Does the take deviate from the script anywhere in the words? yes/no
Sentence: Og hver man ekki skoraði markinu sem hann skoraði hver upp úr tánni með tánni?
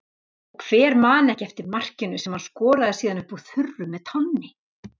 yes